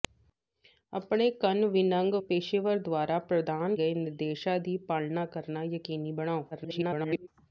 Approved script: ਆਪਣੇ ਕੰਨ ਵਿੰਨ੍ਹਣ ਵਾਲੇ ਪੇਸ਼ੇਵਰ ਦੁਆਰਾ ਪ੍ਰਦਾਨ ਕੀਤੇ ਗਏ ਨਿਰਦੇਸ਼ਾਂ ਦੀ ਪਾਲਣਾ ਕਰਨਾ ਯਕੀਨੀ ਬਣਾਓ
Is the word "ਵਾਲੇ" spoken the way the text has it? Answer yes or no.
no